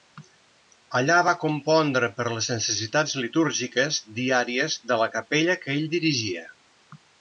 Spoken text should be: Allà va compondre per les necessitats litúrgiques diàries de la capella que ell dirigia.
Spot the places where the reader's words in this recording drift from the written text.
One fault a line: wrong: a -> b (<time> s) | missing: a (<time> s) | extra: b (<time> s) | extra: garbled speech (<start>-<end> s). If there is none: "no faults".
no faults